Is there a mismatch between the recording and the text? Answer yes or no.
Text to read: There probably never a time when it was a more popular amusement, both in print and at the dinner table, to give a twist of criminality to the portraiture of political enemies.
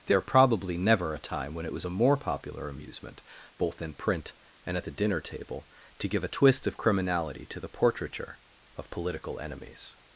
no